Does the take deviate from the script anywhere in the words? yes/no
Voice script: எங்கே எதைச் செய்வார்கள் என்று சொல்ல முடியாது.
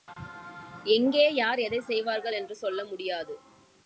yes